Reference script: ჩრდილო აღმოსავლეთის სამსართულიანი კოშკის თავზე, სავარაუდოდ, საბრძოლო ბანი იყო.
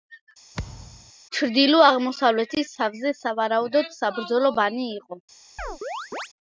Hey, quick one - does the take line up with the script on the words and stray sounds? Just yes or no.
no